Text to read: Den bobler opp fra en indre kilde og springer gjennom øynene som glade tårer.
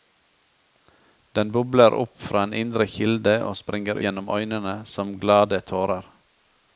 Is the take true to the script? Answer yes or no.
yes